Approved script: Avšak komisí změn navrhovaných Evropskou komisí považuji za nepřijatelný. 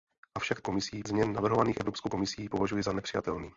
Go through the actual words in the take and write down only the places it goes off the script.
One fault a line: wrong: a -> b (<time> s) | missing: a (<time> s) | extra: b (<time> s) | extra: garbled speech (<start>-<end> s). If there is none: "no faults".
no faults